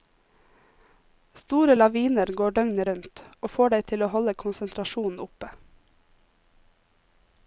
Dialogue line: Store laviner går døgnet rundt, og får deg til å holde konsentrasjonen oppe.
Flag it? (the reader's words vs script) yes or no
no